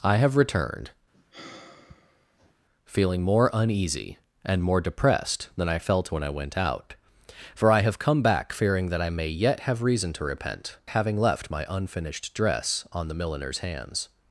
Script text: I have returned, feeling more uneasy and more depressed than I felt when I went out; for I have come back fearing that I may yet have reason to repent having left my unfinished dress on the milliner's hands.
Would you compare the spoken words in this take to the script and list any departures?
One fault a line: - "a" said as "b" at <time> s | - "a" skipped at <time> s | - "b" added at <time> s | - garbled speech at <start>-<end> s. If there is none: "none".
none